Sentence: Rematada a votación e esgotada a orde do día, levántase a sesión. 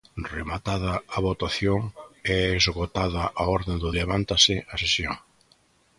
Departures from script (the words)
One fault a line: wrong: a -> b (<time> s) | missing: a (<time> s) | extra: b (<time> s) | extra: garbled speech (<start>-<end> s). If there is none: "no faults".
missing: día (3.9 s)